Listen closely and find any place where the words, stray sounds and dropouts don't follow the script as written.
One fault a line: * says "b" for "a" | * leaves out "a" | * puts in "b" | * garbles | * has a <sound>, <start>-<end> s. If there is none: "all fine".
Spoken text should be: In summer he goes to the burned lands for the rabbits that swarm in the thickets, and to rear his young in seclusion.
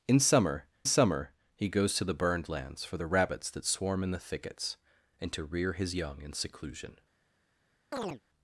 * puts in "summer"
* has a chirp, 7.9-8.2 s